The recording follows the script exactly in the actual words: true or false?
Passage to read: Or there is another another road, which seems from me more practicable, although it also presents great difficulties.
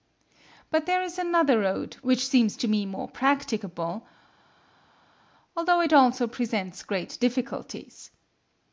false